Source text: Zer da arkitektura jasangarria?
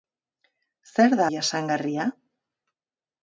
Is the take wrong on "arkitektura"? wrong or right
wrong